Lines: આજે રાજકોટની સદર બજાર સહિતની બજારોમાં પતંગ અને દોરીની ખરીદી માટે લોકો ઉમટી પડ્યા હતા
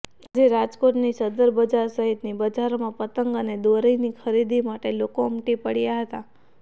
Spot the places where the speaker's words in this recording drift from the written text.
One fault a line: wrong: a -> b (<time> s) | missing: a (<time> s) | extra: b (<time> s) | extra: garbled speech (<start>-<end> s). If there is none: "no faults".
no faults